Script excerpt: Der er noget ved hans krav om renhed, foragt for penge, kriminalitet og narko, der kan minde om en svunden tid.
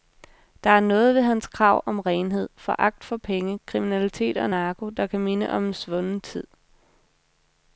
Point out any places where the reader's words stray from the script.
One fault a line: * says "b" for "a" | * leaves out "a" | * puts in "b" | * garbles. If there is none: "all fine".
all fine